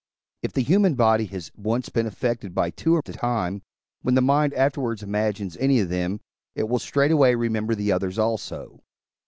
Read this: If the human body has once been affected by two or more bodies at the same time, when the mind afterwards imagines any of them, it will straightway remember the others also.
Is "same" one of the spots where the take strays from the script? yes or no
yes